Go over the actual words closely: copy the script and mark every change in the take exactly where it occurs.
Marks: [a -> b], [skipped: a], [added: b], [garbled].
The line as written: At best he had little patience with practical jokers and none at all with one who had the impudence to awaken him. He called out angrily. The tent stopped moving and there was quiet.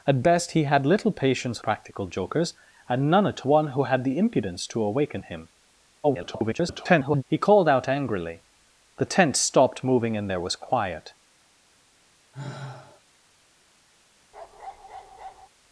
At best he had little patience [skipped: with] practical jokers and none at [skipped: all with] one who had the impudence to awaken him. [garbled] He called out angrily. The tent stopped moving and there was quiet.